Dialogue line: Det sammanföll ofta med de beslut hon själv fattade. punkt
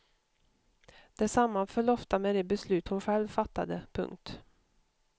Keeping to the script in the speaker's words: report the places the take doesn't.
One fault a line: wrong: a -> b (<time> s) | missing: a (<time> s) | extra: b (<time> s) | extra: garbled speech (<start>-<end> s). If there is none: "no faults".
no faults